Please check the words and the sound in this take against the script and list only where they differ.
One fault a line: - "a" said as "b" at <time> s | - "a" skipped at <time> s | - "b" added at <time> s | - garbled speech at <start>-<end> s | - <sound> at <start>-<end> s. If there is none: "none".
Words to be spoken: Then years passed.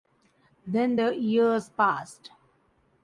- "the" added at 0.9 s